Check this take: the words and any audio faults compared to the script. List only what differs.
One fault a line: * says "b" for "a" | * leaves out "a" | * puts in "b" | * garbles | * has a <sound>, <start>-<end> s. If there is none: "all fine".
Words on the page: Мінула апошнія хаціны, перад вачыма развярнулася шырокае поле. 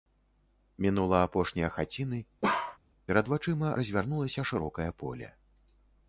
* has a bark, 2.4-2.8 s